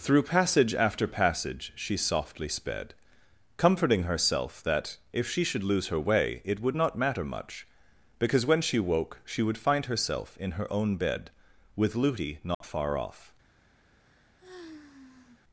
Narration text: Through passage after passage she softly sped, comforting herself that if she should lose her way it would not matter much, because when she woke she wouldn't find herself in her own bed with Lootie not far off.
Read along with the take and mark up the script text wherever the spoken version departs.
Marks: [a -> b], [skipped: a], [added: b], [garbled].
Through passage after passage she softly sped, comforting herself that if she should lose her way it would not matter much, because when she woke she [wouldn't -> would] find herself in her own bed with Lootie not far off.